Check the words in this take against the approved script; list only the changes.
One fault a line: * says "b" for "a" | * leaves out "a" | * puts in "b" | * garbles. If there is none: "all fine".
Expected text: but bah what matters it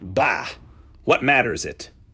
* leaves out "but"